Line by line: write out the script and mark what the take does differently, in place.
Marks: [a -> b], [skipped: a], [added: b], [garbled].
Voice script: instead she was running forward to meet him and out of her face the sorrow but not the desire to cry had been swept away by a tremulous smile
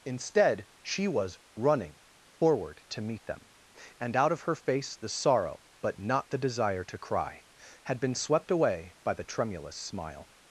instead she was running forward to meet [him -> them] and out of her face the sorrow but not the desire to cry had been swept away by [a -> the] tremulous smile